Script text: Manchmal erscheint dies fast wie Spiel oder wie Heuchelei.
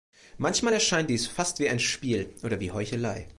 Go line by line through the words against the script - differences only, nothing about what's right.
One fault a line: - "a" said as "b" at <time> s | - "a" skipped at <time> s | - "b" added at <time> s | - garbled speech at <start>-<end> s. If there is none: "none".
- "ein" added at 1.7 s